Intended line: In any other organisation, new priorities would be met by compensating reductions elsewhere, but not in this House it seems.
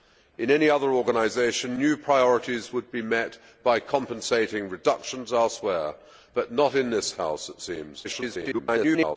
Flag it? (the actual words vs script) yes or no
yes